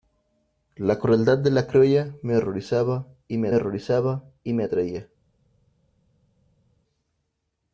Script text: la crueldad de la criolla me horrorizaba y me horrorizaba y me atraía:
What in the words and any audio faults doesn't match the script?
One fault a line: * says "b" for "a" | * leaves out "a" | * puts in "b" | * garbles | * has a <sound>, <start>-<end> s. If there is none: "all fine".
all fine